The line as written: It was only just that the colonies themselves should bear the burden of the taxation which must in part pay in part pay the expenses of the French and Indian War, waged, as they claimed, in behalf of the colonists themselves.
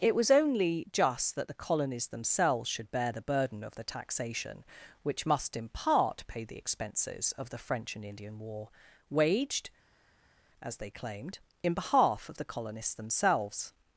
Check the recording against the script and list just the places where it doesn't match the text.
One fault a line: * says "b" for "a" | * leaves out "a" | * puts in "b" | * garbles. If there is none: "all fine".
* leaves out "in part pay"